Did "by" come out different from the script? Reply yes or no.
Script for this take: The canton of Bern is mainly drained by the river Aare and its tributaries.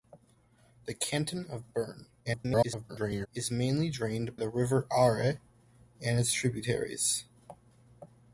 yes